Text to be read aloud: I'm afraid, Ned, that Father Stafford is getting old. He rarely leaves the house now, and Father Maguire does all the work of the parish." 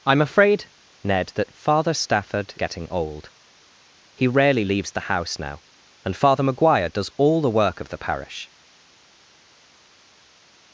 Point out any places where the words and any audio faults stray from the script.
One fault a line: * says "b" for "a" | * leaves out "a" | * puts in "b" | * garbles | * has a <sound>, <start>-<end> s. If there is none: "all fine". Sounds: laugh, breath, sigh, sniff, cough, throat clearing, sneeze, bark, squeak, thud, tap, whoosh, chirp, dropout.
* leaves out "is"